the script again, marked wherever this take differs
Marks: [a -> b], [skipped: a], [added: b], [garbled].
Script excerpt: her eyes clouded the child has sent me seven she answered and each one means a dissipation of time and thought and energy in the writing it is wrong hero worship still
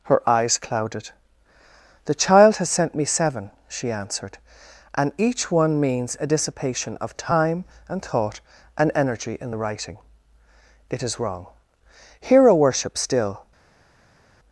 her eyes clouded the child has sent me seven she answered and each one means a dissipation of time and thought and energy in the writing it is wrong hero worship still